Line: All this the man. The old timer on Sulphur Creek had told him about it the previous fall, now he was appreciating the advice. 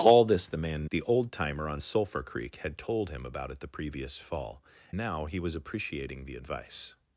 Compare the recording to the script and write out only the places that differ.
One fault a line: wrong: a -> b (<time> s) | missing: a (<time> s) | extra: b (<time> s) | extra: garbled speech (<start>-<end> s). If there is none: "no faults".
no faults